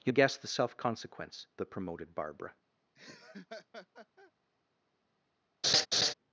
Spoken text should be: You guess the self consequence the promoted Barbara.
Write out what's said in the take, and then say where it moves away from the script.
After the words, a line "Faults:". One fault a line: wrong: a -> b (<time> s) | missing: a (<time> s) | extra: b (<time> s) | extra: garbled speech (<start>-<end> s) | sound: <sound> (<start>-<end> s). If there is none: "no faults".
You guess the self consequence the promoted Barbara.
Faults:
sound: laugh (2.9-4.3 s)
sound: laugh (5.6-6.1 s)